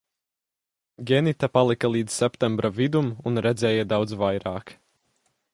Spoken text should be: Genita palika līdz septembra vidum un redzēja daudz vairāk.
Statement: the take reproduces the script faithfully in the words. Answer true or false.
true